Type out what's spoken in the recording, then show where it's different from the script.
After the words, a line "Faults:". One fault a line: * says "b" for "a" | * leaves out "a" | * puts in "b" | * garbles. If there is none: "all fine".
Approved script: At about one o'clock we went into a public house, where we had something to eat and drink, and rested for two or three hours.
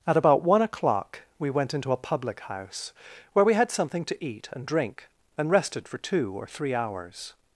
At about one o'clock we went into a public house, where we had something to eat and drink, and rested for two or three hours.
Faults:
all fine